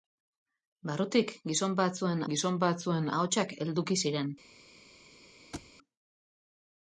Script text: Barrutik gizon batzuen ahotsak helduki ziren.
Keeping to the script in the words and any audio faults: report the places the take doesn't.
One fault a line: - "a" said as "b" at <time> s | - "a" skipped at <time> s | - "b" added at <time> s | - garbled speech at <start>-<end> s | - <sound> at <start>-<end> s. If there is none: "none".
- "gizon batzuen" added at 2.3 s
- thud at 5.5-5.7 s